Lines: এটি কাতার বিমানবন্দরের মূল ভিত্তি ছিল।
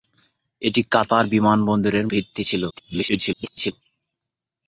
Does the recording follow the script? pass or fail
fail